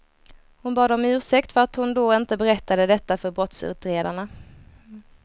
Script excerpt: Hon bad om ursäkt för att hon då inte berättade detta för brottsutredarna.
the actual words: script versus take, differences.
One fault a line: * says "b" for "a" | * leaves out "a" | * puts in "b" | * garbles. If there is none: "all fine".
all fine